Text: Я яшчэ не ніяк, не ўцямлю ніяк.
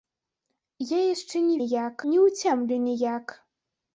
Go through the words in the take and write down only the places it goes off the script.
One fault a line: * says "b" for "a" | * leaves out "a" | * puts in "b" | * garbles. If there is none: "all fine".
all fine